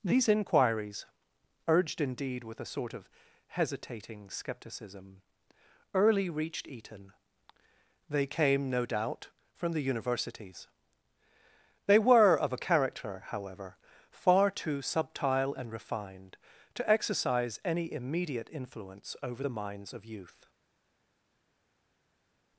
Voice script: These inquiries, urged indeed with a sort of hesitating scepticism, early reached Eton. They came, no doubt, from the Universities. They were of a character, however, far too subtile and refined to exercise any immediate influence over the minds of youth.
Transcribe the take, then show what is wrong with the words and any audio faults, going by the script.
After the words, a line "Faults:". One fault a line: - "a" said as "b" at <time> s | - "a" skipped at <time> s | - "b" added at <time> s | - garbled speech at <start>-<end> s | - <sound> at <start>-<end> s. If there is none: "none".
These inquiries, urged indeed with a sort of hesitating scepticism, early reached Eton. They came, no doubt, from the Universities. They were of a character, however, far too subtile and refined to exercise any immediate influence over the minds of youth.
Faults:
none